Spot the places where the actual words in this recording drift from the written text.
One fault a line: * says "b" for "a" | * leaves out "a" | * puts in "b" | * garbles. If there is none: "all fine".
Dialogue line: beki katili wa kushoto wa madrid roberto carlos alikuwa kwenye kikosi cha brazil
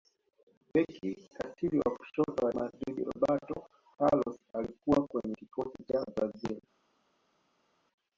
all fine